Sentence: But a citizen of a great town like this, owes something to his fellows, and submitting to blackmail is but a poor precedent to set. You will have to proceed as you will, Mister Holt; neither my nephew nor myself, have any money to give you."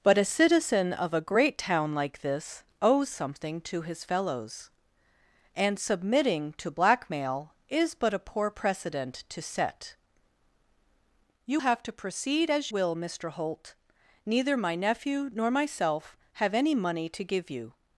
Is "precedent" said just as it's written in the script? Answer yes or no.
yes